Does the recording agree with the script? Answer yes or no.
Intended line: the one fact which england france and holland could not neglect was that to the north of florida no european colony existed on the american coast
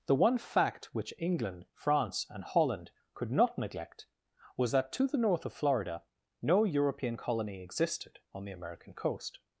yes